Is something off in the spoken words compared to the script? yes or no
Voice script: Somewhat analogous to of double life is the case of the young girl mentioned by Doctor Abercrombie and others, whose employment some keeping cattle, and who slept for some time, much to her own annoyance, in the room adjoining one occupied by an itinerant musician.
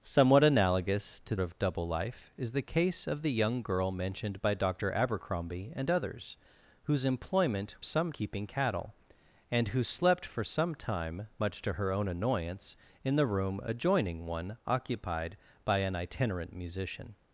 no